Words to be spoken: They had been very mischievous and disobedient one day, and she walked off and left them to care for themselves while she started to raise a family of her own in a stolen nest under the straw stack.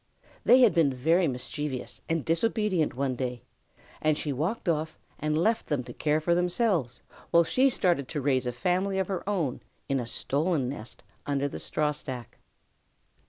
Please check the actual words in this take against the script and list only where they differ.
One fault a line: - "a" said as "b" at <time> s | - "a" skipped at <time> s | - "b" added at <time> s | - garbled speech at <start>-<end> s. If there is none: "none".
none